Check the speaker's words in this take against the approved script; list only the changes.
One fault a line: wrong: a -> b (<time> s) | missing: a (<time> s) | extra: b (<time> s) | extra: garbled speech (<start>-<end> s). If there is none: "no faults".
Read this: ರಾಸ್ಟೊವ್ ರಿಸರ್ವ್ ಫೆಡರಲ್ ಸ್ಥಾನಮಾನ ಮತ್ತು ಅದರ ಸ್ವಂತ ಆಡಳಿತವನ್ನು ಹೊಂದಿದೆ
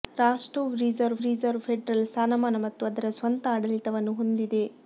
extra: ರಿಸರ್ವ್ (1.2 s)